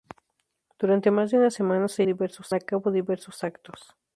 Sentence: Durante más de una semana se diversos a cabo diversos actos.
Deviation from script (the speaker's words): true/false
false